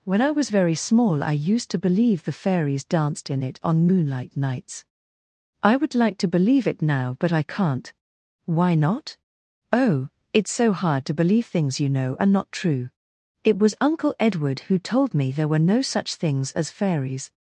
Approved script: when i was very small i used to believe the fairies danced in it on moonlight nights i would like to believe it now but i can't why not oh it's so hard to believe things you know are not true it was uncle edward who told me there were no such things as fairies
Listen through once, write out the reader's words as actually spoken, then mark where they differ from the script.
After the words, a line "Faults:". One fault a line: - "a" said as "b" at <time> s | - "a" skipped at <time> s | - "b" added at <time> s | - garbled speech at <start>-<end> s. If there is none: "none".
when i was very small i used to believe the fairies danced in it on moonlight nights i would like to believe it now but i can't why not oh it's so hard to believe things you know are not true it was uncle edward who told me there were no such things as fairies
Faults:
none